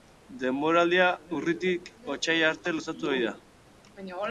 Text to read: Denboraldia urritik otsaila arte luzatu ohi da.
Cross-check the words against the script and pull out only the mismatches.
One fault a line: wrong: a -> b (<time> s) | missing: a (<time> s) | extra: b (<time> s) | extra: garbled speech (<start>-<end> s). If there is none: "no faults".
no faults